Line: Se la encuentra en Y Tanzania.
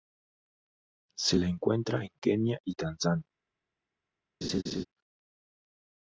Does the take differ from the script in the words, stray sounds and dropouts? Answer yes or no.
yes